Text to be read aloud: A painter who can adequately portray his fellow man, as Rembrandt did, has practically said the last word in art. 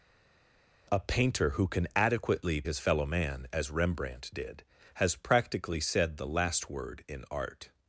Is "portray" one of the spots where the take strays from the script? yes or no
yes